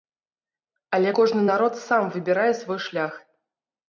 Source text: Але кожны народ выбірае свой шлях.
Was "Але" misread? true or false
false